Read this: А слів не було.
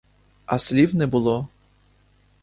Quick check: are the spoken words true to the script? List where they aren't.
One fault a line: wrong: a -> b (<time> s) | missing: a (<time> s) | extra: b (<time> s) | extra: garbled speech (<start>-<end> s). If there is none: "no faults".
no faults